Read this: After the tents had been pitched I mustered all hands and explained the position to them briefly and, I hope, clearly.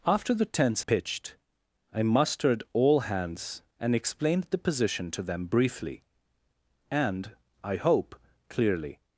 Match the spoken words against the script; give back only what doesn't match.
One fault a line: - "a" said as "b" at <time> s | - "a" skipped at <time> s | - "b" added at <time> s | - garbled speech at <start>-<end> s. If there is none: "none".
- "had been" skipped at 0.8 s